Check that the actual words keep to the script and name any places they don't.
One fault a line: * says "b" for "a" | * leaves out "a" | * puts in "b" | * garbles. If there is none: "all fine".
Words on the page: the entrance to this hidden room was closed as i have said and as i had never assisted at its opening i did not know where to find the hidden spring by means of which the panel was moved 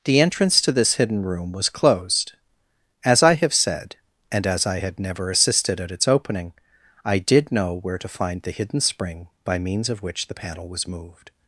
* leaves out "not"